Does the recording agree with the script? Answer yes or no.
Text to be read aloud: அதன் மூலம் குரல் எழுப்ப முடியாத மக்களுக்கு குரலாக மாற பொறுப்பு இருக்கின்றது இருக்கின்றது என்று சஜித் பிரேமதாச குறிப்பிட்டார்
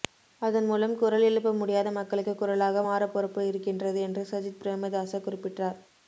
no